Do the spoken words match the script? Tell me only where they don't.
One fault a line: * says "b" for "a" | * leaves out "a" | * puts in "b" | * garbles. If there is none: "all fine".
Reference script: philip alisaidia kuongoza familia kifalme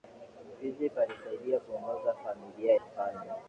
all fine